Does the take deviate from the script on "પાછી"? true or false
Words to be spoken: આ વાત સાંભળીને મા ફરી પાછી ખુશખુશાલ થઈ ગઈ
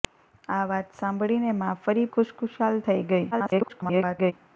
true